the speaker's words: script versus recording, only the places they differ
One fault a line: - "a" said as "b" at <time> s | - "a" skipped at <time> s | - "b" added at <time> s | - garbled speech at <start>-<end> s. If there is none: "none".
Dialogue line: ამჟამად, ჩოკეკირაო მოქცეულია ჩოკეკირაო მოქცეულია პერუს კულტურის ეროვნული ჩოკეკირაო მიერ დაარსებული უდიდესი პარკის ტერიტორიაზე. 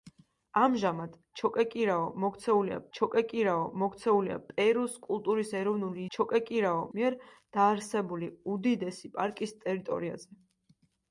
none